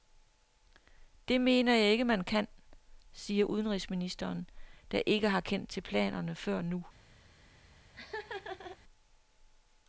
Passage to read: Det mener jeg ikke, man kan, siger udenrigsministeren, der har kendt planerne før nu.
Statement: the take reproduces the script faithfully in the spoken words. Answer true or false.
false